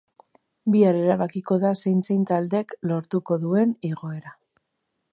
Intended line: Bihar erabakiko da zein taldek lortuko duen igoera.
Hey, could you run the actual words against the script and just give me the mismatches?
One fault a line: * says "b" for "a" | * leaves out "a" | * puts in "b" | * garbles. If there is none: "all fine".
* puts in "zein"